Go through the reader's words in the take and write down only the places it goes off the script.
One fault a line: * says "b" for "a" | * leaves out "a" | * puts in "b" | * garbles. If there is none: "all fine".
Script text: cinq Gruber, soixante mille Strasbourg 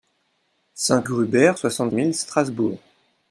all fine